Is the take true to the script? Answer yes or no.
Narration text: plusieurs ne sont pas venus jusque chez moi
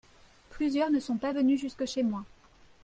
yes